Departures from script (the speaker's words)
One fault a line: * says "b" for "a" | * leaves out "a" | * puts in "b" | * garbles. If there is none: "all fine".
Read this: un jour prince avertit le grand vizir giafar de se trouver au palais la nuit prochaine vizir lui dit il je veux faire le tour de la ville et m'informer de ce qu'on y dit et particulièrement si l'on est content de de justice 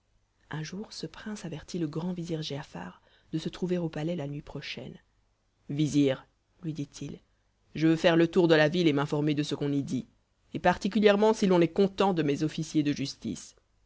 * puts in "ce"
* puts in "mes officiers"